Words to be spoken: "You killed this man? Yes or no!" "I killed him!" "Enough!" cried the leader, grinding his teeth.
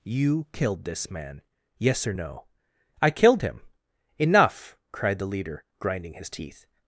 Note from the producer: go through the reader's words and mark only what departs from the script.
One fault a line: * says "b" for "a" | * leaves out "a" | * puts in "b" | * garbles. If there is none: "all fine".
all fine